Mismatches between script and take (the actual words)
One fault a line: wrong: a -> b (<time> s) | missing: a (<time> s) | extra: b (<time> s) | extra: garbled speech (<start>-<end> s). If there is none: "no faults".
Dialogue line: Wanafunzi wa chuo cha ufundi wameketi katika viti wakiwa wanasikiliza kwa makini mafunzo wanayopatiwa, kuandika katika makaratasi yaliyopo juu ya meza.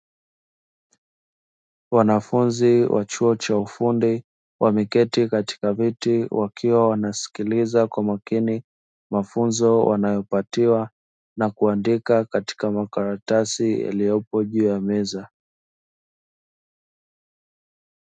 extra: na (11.4 s)